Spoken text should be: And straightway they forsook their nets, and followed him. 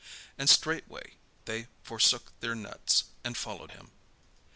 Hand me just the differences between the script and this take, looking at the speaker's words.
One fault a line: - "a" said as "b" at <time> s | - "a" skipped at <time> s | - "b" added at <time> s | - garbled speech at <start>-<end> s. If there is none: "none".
none